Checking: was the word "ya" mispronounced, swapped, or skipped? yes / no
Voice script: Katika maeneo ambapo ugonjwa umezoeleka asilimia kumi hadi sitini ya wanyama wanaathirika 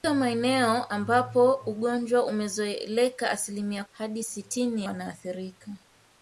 yes